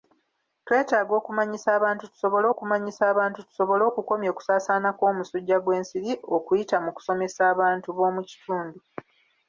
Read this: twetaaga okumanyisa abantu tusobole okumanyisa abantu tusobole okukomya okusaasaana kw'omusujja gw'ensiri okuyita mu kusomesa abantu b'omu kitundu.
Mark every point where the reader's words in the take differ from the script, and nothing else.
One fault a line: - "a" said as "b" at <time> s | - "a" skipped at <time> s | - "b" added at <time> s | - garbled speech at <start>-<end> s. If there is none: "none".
none